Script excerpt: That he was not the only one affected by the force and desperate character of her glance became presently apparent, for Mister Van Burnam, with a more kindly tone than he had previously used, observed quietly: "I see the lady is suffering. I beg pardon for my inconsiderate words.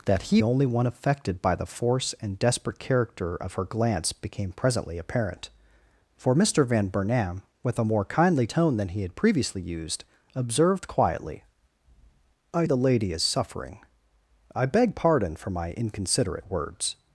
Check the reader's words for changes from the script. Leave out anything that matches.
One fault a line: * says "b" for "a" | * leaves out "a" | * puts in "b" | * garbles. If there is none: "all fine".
* leaves out "was not the"
* leaves out "see"